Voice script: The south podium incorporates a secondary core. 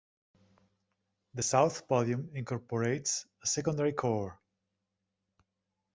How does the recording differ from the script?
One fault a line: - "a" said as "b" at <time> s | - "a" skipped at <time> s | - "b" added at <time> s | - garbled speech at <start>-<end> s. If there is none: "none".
none